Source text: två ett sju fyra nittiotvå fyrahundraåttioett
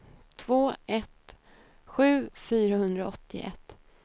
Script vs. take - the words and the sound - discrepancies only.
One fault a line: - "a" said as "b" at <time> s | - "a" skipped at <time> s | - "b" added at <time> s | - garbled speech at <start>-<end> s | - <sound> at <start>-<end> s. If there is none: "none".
- "fyra nittiotvå" skipped at 2.3 s